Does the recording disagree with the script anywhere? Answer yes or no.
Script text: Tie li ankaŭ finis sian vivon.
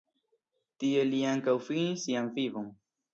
no